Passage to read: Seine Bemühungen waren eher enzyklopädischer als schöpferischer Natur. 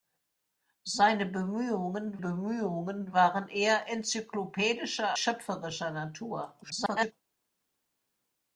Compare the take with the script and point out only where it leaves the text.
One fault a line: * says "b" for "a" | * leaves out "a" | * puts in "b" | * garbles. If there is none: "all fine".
* puts in "Bemühungen"
* leaves out "als"
* garbles